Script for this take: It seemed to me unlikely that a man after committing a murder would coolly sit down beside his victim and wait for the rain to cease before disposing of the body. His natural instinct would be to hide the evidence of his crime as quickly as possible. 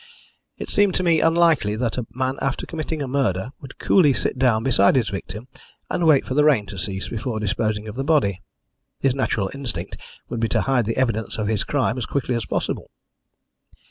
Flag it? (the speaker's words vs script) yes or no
no